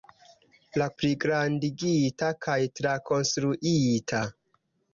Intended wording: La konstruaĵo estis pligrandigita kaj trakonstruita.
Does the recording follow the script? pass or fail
fail